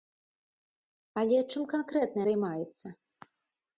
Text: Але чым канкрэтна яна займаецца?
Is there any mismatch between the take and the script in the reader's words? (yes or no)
yes